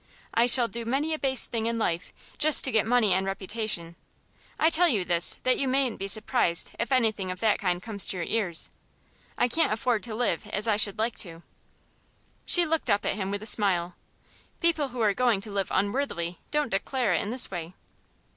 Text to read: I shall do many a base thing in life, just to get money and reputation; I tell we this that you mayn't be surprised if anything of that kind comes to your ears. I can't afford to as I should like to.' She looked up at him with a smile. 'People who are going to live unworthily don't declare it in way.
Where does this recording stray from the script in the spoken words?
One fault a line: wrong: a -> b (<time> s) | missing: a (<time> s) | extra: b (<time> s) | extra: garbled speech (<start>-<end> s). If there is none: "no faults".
wrong: we -> you (4.9 s)
extra: live (10.1 s)
extra: this (17.3 s)